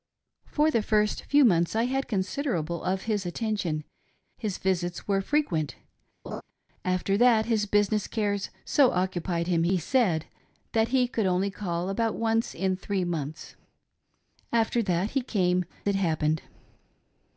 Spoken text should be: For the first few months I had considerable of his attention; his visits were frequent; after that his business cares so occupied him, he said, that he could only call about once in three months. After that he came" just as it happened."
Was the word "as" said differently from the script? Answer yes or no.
yes